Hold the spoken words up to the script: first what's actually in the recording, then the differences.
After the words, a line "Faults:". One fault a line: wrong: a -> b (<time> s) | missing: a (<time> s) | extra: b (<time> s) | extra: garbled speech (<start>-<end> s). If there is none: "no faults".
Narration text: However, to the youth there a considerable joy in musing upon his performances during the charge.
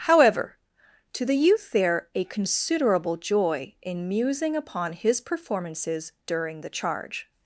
However, to the youth there a considerable joy in musing upon his performances during the charge.
Faults:
no faults